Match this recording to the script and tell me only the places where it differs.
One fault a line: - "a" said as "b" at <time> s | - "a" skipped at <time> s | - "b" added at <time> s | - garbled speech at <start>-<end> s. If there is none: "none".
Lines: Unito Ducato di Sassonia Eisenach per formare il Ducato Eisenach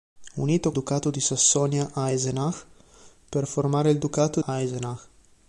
none